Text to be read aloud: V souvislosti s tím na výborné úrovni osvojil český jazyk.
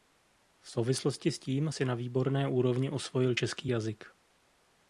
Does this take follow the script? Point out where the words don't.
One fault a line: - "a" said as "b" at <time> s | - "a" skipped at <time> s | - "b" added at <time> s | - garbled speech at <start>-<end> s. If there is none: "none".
- "si" added at 1.7 s